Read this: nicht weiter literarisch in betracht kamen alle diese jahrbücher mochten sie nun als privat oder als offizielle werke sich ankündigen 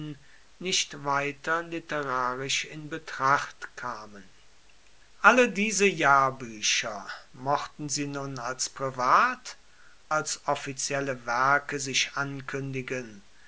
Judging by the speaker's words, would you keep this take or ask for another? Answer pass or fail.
fail